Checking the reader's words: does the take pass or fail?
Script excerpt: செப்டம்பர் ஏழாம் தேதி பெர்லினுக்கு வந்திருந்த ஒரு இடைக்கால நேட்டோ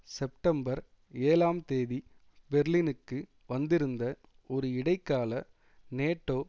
pass